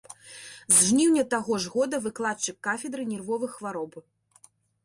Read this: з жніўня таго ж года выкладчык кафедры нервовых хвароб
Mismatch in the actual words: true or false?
false